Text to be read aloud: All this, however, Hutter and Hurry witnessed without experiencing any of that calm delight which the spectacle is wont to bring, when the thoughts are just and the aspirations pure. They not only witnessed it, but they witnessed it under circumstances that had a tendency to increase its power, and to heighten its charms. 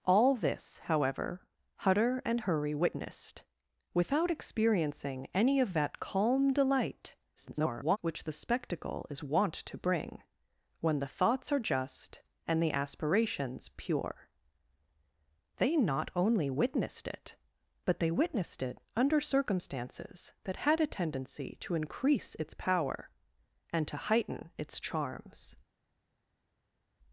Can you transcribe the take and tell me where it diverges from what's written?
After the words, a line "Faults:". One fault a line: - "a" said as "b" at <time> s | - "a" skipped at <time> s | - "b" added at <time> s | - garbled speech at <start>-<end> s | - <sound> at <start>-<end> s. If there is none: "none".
All this, however, Hutter and Hurry witnessed without experiencing any of that calm delight [garbled] which the spectacle is wont to bring, when the thoughts are just and the aspirations pure. They not only witnessed it, but they witnessed it under circumstances that had a tendency to increase its power, and to heighten its charms.
Faults:
- garbled speech at 7.4-8.0 s